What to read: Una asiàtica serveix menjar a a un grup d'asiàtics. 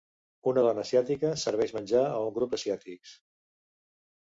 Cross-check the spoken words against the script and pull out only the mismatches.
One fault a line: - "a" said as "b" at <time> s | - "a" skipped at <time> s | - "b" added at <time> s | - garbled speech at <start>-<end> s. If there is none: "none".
- "dona" added at 0.7 s
- "a" skipped at 2.2 s